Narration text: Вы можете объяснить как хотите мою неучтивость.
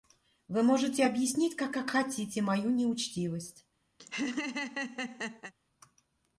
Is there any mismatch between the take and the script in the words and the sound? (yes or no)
yes